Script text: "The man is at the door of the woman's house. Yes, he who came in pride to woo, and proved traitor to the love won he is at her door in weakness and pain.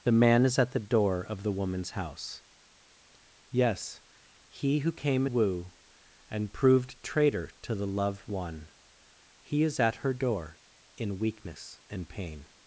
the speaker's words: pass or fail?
fail